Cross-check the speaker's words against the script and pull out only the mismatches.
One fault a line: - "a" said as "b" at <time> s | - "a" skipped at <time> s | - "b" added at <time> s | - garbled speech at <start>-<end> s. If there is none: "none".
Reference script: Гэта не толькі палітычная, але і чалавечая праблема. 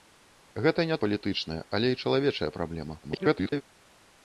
- "толькі" skipped at 1.0 s
- garbled speech at 3.0-3.6 s